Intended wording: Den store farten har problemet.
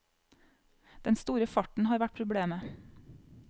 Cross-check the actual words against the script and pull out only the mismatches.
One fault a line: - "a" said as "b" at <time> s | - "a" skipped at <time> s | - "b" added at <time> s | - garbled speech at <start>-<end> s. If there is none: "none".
- "vært" added at 2.0 s